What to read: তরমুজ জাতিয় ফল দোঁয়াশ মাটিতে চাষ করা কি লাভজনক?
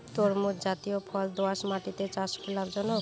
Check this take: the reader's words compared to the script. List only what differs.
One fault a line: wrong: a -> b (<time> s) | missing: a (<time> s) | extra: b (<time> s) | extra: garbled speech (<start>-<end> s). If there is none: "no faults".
missing: করা (2.3 s)